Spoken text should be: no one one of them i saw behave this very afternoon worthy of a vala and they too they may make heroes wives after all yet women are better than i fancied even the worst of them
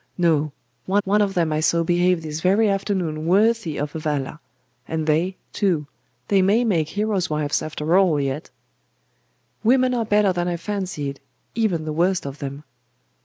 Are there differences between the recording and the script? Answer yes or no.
no